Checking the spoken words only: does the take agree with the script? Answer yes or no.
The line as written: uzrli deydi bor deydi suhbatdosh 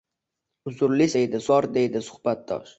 yes